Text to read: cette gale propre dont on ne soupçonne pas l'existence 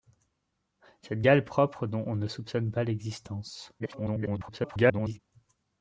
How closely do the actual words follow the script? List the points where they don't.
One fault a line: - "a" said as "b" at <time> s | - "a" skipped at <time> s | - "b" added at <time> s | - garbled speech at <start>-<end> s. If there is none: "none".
- garbled speech at 3.8-5.2 s